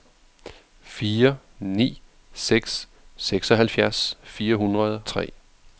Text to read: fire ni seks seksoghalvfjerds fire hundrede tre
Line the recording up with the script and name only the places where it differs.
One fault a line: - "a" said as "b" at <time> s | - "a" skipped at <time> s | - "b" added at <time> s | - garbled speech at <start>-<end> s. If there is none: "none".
none